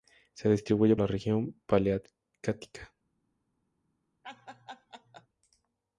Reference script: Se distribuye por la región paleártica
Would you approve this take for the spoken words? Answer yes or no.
no